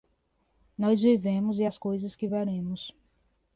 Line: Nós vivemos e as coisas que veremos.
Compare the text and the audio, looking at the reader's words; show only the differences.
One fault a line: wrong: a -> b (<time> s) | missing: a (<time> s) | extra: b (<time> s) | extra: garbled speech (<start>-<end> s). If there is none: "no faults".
no faults